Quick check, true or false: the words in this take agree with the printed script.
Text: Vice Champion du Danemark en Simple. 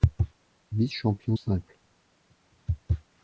false